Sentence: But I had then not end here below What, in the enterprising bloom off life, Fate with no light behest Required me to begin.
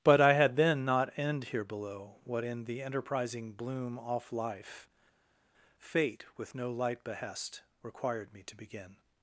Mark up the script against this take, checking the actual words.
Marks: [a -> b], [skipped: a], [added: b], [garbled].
But I had then not end here below What, in the enterprising bloom off life, Fate with no light behest Required me to begin.